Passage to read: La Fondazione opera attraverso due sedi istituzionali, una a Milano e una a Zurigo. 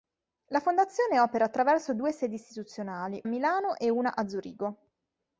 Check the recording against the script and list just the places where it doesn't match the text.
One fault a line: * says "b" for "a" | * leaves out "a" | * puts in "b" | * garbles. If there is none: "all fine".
* leaves out "una"